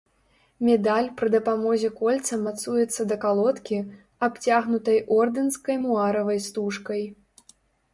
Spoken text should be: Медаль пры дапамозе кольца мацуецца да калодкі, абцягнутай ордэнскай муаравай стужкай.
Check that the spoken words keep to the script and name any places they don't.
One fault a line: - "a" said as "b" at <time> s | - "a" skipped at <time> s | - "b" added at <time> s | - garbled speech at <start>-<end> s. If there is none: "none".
none